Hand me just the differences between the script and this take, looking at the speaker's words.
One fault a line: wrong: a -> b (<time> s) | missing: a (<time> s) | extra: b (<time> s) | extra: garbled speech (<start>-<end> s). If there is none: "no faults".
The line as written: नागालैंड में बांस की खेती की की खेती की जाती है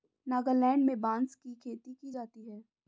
missing: की खेती की (2.1 s)